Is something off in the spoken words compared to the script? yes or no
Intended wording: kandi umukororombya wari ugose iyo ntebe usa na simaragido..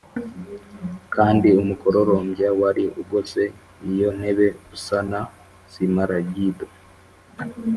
no